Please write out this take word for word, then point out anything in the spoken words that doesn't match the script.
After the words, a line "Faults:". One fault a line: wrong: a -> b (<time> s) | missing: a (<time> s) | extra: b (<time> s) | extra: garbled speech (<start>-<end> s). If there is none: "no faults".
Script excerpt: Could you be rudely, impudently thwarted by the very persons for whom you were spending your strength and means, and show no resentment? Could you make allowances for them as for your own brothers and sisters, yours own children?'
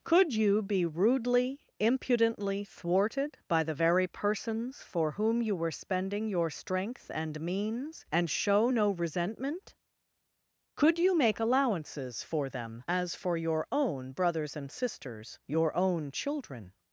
Could you be rudely, impudently thwarted by the very persons for whom you were spending your strength and means, and show no resentment? Could you make allowances for them as for your own brothers and sisters, your own children?'
Faults:
wrong: yours -> your (15.4 s)